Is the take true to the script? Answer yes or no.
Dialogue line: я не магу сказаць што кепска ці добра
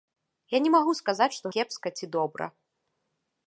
yes